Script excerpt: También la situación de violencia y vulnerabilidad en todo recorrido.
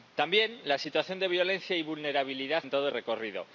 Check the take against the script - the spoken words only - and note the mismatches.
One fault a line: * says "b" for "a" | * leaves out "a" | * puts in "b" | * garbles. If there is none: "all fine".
all fine